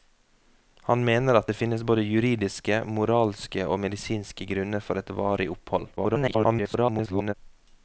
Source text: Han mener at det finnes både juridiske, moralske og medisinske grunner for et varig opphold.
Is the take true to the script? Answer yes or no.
no